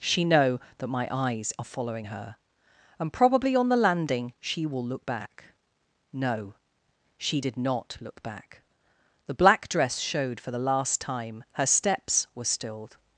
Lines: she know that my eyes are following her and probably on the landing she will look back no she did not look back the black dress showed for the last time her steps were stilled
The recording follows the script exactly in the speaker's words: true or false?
true